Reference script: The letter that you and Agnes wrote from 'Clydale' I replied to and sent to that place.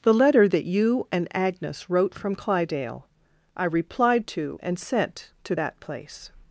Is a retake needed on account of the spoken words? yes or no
no